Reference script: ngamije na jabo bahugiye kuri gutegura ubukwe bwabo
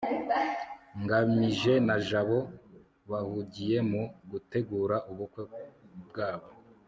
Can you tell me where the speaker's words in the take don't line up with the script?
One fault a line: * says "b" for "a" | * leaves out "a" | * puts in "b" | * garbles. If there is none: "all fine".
* says "mu" for "kuri"